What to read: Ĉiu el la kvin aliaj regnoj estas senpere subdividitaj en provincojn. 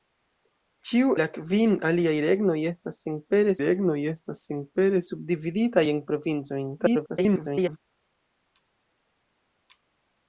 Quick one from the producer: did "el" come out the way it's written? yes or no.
no